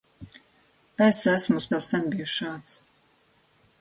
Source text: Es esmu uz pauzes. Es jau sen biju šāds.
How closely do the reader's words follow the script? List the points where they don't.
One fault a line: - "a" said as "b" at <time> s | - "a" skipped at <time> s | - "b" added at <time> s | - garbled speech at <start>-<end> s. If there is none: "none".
- "pauzes Es" skipped at 1.7 s